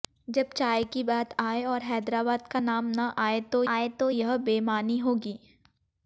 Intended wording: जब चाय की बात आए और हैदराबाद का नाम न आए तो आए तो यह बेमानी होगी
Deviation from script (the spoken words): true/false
false